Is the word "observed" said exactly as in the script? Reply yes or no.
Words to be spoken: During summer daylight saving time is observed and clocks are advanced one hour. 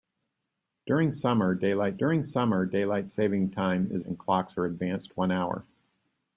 no